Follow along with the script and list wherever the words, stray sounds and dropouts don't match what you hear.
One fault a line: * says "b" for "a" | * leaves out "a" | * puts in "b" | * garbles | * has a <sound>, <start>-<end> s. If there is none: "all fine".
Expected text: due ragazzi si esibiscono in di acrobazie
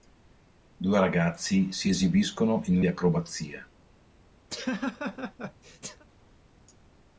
* has a laugh, 4.5-6.0 s